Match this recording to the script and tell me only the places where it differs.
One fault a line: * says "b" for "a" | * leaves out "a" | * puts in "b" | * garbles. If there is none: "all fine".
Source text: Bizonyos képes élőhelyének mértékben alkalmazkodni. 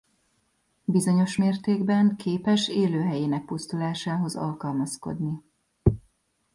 * puts in "mértékben"
* says "pusztulásához" for "mértékben"